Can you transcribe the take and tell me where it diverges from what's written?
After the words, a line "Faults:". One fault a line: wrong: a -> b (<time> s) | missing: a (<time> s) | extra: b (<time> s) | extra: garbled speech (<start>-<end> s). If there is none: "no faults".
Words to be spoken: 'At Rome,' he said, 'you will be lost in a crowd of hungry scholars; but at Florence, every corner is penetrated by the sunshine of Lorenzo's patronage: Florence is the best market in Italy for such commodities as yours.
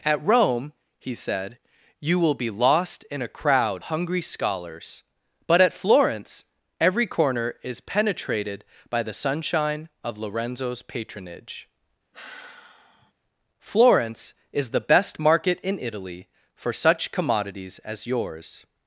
'At Rome,' he said, 'you will be lost in a crowd hungry scholars; but at Florence, every corner is penetrated by the sunshine of Lorenzo's patronage: Florence is the best market in Italy for such commodities as yours.
Faults:
missing: of (3.8 s)